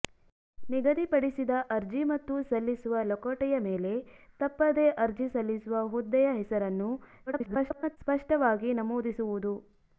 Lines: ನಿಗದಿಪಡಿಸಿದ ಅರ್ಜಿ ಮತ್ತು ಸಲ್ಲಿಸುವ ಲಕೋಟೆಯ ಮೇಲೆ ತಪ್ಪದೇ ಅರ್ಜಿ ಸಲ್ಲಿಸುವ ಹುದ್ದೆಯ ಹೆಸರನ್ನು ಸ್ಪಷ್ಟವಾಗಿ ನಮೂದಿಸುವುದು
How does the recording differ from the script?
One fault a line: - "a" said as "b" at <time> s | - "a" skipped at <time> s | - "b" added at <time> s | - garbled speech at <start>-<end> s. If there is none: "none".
- garbled speech at 7.3-8.0 s